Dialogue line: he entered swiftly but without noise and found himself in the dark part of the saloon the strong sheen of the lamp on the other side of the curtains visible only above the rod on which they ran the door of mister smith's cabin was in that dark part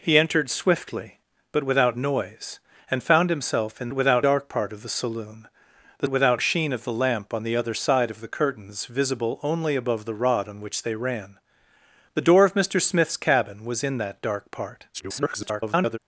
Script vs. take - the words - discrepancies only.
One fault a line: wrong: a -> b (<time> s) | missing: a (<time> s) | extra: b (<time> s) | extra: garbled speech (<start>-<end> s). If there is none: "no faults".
wrong: the -> without (3.9 s)
wrong: strong -> without (6.1 s)
extra: garbled speech (14.9-16.0 s)